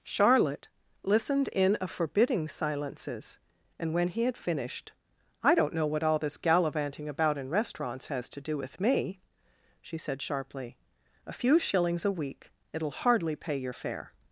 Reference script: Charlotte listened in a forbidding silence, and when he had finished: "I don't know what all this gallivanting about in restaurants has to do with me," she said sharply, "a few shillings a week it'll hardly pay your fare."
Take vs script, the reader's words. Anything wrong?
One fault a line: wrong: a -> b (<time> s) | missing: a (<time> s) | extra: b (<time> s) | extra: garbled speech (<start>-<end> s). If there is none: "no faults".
wrong: silence -> silences (2.5 s)